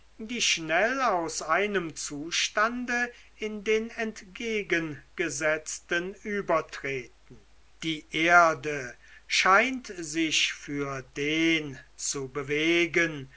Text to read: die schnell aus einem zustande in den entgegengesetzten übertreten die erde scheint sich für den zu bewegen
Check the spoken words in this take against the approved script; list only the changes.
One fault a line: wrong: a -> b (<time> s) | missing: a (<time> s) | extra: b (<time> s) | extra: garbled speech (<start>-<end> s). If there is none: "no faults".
no faults